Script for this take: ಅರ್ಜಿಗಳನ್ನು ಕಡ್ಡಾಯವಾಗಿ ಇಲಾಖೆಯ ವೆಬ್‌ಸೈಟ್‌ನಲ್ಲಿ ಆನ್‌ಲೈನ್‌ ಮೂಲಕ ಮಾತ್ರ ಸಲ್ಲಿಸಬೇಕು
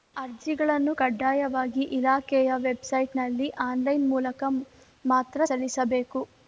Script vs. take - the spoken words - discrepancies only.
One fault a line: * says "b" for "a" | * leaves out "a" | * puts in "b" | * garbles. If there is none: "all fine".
all fine